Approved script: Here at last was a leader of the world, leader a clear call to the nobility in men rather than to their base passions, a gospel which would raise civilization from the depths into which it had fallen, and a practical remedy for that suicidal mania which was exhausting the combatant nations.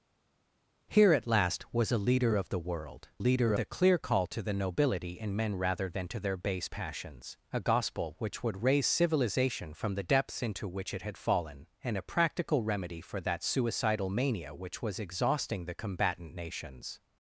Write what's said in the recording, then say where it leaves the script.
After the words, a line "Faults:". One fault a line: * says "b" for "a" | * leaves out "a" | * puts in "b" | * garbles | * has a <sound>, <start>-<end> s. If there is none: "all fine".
Here at last was a leader of the world, leader a clear call to the nobility in men rather than to their base passions, a gospel which would raise civilization from the depths into which it had fallen, and a practical remedy for that suicidal mania which was exhausting the combatant nations.
Faults:
all fine